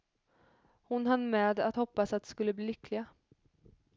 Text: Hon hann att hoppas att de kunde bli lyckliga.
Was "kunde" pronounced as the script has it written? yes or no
no